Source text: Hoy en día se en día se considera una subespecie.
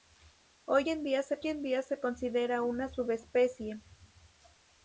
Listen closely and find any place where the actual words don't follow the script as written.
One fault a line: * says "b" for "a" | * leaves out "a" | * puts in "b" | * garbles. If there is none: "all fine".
all fine